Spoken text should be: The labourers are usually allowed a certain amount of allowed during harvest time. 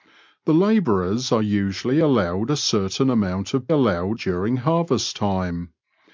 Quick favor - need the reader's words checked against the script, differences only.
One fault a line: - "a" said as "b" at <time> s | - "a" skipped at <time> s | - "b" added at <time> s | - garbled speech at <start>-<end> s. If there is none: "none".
none